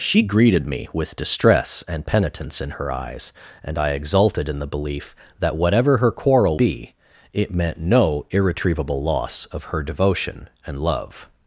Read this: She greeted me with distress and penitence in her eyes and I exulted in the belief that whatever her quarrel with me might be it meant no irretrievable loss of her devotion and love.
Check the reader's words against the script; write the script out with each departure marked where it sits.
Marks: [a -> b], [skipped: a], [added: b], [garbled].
She greeted me with distress and penitence in her eyes and I exulted in the belief that whatever her quarrel [skipped: with me might] be it meant no irretrievable loss of her devotion and love.